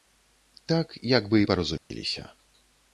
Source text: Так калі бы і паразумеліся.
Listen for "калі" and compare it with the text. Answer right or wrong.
wrong